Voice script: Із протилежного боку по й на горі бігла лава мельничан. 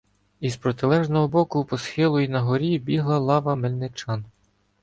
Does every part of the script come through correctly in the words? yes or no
no